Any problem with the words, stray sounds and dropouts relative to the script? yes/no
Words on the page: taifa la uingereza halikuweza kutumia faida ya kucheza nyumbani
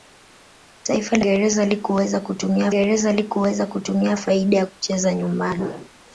yes